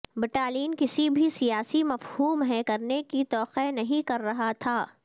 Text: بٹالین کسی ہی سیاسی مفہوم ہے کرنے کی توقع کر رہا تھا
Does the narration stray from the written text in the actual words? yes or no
yes